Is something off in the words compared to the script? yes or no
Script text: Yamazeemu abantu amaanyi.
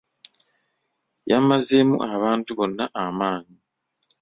yes